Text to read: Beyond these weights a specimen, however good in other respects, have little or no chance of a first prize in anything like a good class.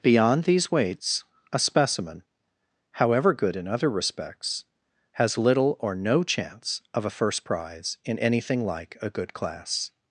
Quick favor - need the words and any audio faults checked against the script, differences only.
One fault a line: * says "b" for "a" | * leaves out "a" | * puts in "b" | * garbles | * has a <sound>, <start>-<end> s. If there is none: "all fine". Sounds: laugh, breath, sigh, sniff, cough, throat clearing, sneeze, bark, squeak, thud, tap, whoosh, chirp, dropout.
* says "has" for "have"